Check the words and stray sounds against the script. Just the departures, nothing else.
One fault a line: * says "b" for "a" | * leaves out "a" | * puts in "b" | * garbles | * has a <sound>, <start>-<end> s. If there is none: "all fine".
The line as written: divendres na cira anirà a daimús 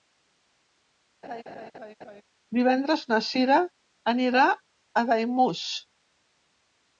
* has a laugh, 1.2-2.2 s